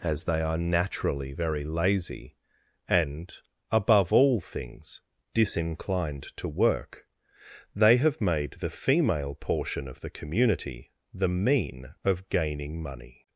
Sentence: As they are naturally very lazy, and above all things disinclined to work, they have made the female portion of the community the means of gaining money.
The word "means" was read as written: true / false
false